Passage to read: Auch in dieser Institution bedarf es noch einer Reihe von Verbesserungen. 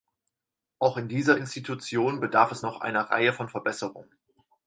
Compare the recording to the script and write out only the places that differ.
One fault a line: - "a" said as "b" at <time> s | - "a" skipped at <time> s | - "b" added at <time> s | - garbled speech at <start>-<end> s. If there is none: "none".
none